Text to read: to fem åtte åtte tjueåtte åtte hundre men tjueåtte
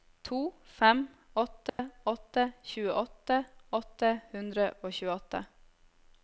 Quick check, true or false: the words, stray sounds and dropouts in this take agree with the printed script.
false